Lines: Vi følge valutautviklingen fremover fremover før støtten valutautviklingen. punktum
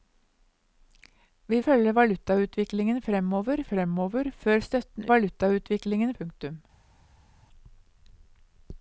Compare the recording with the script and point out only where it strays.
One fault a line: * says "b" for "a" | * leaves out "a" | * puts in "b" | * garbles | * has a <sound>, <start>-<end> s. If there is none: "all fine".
all fine